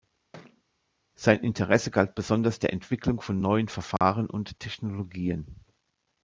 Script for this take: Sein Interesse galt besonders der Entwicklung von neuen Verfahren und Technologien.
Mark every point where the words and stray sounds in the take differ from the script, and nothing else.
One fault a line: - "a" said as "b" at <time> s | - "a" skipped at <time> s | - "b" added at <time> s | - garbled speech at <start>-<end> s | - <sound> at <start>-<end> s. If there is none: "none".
- thud at 0.3-0.6 s
- dropout at 4.0-4.0 s